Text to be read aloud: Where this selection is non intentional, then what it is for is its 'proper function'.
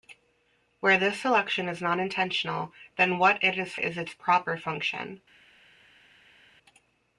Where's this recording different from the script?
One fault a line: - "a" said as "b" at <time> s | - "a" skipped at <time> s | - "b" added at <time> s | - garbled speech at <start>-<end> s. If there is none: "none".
- "for" skipped at 3.8 s